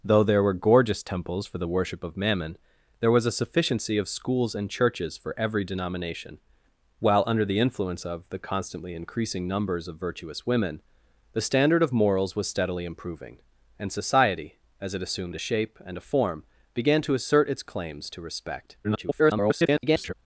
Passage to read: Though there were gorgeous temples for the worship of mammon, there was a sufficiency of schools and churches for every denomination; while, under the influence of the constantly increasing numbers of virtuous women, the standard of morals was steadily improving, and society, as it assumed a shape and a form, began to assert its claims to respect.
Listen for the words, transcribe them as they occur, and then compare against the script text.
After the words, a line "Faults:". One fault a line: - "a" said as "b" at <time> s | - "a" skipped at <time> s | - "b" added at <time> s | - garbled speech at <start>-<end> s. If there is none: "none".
Though there were gorgeous temples for the worship of mammon, there was a sufficiency of schools and churches for every denomination; while, under the influence of the constantly increasing numbers of virtuous women, the standard of morals was steadily improving, and society, as it assumed a shape and a form, began to assert its claims to respect. [garbled]
Faults:
- garbled speech at 18.8-20.1 s